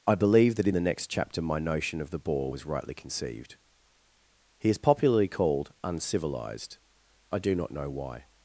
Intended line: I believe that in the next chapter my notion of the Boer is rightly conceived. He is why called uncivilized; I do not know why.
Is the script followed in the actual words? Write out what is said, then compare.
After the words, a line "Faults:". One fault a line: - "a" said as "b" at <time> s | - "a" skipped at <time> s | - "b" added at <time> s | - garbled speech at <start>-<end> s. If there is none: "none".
I believe that in the next chapter my notion of the Boer was rightly conceived. He is popularly called uncivilized; I do not know why.
Faults:
- "is" said as "was" at 2.5 s
- "why" said as "popularly" at 4.8 s